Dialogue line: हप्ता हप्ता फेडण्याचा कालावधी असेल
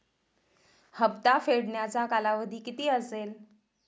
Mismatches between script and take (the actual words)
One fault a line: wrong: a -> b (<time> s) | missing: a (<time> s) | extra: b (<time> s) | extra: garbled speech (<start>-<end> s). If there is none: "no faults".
missing: हप्ता (1.4 s)
extra: किती (2.6 s)